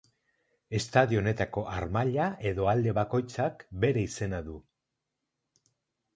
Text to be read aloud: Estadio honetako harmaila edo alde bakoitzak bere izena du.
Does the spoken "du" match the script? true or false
true